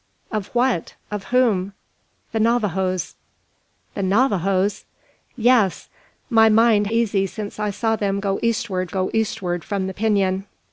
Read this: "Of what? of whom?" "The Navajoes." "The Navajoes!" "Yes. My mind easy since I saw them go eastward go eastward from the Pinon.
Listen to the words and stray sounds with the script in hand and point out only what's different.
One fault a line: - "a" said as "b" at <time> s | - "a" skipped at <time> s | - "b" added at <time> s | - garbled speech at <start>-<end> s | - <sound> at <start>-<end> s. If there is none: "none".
none